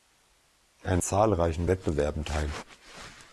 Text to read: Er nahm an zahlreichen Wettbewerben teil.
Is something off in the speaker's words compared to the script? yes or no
yes